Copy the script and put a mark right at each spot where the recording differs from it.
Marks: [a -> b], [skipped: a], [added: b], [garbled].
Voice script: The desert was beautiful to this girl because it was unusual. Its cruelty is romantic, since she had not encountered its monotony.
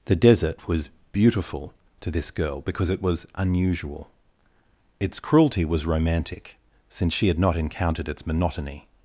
The desert was beautiful to this girl because it was unusual. Its cruelty [is -> was] romantic, since she had not encountered its monotony.